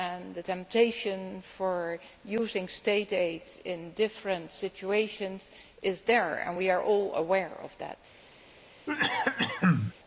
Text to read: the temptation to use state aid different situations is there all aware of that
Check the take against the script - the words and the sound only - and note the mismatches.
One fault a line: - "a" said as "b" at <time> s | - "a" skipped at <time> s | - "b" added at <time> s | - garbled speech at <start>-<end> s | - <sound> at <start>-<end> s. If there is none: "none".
- "in" added at 3.6 s
- "and we are" added at 6.4 s
- cough at 8.9-9.9 s